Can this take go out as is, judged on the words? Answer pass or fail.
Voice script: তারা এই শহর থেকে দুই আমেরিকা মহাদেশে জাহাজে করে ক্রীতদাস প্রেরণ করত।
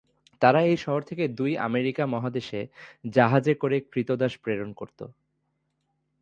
pass